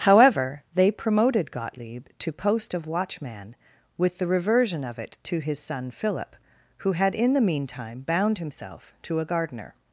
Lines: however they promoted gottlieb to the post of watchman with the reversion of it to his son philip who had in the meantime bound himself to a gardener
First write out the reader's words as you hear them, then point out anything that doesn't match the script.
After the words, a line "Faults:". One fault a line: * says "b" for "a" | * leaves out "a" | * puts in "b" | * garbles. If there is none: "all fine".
however they promoted gottlieb to post of watchman with the reversion of it to his son philip who had in the meantime bound himself to a gardener
Faults:
* leaves out "the"